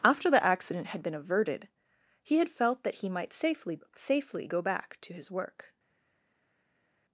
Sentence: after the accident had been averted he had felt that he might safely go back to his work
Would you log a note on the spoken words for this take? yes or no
yes